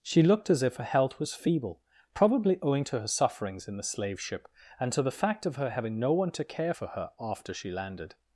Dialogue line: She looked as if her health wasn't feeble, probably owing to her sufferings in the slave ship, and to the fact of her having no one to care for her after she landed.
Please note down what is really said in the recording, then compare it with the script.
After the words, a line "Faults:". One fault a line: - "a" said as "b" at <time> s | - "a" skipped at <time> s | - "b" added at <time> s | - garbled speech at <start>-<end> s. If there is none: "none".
She looked as if her health was feeble, probably owing to her sufferings in the slave ship, and to the fact of her having no one to care for her after she landed.
Faults:
- "wasn't" said as "was" at 1.2 s